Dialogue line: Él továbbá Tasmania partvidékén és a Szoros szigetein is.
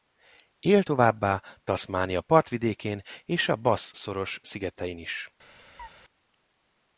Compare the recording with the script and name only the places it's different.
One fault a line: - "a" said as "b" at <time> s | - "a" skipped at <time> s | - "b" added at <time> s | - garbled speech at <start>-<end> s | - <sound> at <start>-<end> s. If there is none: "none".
- "Bass" added at 3.6 s
- chirp at 5.8-5.9 s